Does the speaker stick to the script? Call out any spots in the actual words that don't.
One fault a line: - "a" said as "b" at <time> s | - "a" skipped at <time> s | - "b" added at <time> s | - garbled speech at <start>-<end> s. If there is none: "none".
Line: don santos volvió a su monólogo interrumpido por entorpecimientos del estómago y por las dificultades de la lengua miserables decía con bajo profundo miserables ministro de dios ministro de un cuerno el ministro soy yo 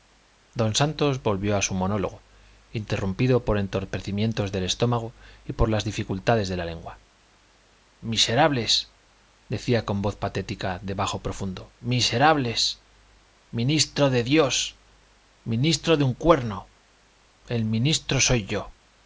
- "voz patética de" added at 10.0 s